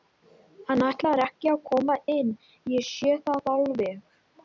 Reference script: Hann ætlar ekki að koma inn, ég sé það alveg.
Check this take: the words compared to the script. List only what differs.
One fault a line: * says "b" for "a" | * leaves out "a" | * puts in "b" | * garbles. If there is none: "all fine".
all fine